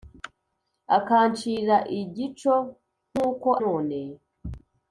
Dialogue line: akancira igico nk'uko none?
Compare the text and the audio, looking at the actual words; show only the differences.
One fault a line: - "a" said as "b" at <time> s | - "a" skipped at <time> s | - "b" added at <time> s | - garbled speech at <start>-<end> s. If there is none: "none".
none